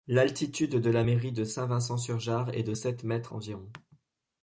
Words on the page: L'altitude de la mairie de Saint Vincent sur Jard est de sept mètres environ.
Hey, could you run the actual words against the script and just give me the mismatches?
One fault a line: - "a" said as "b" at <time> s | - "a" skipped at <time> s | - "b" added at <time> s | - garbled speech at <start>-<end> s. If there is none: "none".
none